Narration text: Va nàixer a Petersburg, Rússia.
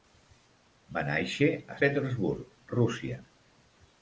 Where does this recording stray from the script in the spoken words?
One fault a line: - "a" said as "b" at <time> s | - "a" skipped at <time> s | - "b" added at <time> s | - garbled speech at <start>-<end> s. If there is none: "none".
none